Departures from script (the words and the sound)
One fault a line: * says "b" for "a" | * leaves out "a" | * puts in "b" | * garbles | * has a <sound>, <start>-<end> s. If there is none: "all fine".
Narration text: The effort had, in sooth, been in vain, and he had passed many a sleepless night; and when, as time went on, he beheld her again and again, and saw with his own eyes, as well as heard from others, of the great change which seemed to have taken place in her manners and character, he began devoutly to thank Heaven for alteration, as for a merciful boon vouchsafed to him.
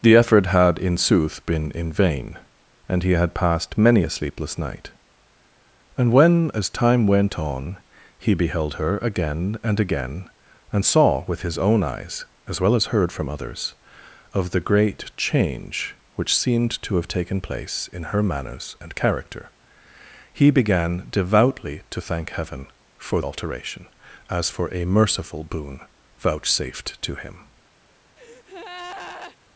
* has a breath, 28.2-29.4 s